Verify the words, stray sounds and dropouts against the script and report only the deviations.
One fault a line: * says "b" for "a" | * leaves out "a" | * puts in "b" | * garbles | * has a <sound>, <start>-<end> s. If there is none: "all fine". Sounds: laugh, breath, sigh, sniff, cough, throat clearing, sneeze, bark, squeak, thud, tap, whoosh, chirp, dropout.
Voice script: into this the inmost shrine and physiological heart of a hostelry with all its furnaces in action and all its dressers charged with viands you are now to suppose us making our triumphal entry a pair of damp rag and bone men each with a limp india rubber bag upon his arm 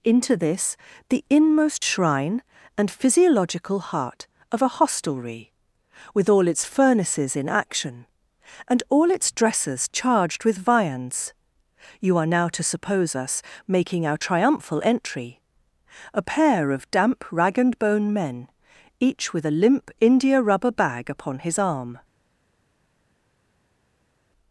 all fine